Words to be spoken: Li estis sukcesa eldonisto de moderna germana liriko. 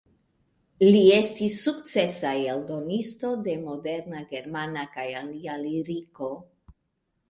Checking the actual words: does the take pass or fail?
fail